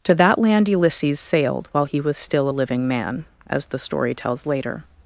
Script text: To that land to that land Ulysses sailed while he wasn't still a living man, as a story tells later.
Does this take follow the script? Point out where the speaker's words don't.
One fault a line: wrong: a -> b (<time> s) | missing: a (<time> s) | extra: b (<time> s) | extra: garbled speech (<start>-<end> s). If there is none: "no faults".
missing: to that land (0.7 s)
wrong: wasn't -> was (2.0 s)
wrong: a -> the (3.7 s)